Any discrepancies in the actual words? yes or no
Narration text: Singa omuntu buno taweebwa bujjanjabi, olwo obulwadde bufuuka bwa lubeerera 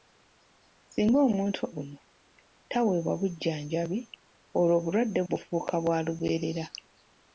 no